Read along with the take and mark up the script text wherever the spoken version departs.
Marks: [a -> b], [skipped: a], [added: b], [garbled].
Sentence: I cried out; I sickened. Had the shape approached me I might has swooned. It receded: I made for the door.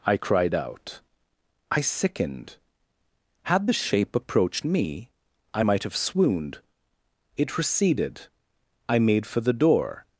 I cried out; I sickened. Had the shape approached me I might [has -> have] swooned. It receded: I made for the door.